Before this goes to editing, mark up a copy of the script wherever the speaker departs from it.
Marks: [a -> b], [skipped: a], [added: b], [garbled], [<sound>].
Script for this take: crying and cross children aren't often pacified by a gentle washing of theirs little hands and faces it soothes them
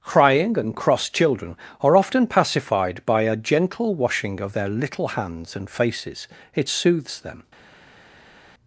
crying and cross children [aren't -> are] often pacified by a gentle washing of [theirs -> their] little hands and faces it soothes them